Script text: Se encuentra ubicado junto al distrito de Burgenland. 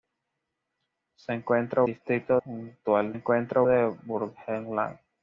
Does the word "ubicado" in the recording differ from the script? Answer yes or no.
yes